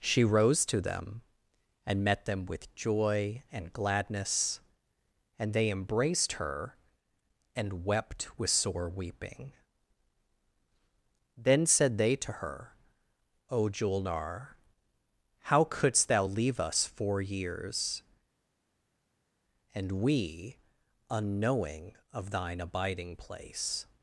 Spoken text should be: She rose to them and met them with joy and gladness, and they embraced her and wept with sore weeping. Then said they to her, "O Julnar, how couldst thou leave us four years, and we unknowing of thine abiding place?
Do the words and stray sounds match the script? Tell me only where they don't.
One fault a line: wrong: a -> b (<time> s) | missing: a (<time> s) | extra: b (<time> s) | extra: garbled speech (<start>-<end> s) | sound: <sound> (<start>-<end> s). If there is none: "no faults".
no faults